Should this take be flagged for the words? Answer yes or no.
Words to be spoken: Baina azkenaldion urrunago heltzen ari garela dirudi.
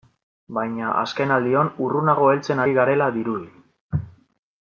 no